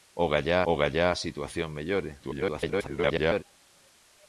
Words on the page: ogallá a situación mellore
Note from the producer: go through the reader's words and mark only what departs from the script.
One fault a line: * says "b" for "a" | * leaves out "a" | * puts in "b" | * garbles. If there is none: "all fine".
* puts in "ogallá"
* garbles